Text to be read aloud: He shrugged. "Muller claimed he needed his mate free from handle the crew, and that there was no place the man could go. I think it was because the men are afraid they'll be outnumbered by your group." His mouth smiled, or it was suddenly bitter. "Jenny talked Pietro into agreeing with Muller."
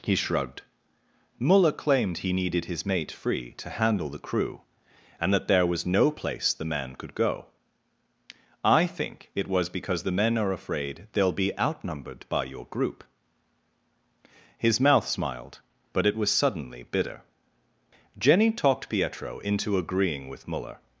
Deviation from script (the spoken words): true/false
true